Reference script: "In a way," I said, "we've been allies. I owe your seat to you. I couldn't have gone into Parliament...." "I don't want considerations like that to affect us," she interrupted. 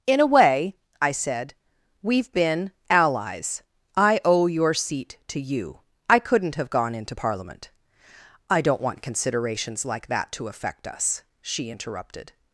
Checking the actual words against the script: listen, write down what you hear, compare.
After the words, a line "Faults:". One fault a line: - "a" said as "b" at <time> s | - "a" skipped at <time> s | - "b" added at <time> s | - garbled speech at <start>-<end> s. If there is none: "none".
"In a way," I said, "we've been allies. I owe your seat to you. I couldn't have gone into Parliament...." "I don't want considerations like that to affect us," she interrupted.
Faults:
none